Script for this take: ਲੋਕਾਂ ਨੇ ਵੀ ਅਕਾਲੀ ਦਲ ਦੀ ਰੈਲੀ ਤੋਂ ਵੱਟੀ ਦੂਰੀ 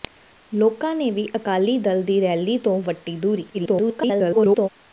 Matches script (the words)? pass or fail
fail